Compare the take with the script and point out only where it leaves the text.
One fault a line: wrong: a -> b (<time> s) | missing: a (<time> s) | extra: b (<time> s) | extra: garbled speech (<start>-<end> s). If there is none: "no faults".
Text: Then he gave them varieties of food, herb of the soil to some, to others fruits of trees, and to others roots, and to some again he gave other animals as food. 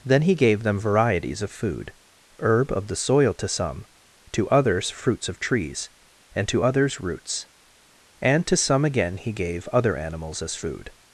no faults